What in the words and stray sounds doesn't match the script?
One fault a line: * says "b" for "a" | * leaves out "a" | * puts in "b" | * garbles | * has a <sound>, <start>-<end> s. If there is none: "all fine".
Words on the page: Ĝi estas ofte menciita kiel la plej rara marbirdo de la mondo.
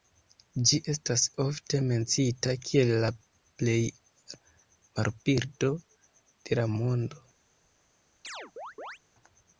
* leaves out "rara"
* has a chirp, 8.2-9.0 s